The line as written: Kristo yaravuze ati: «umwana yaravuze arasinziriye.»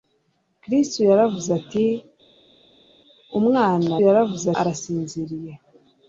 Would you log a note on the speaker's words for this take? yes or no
no